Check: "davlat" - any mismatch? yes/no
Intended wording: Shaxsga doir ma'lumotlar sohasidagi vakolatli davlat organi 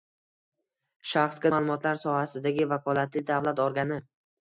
no